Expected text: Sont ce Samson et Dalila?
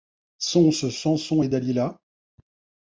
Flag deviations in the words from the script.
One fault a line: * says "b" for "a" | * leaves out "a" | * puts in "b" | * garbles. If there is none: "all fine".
all fine